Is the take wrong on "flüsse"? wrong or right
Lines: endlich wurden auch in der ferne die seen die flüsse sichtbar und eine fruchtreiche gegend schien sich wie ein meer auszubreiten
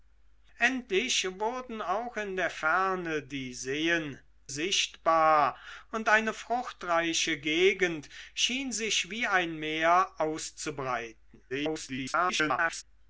wrong